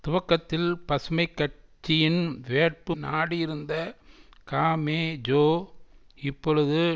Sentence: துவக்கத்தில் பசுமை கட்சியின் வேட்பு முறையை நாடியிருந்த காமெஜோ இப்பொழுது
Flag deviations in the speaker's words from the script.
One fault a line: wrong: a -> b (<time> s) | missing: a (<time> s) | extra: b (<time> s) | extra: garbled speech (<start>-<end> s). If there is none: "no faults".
missing: முறையை (2.9 s)